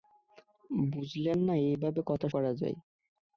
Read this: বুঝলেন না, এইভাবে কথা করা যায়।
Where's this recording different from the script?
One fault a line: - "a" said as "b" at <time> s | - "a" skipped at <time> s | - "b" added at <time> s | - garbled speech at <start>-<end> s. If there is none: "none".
none